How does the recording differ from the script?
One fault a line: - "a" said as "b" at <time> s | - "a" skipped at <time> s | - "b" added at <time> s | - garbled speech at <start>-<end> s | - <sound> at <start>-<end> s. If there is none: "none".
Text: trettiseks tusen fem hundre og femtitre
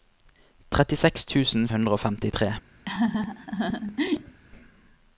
- "fem" skipped at 1.7 s
- laugh at 2.8-4.4 s